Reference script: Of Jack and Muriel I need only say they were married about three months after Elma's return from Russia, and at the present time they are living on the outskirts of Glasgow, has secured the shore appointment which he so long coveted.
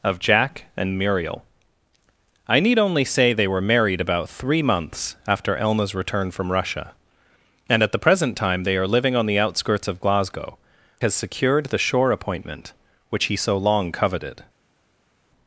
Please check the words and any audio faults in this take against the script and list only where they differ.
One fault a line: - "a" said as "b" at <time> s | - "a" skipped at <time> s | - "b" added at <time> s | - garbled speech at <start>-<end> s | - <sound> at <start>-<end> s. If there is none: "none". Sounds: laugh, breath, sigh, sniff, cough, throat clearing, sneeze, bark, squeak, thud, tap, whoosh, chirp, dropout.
none